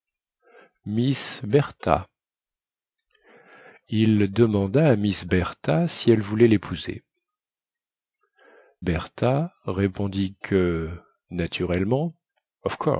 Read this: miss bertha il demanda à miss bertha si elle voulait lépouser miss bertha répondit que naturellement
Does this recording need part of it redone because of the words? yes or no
yes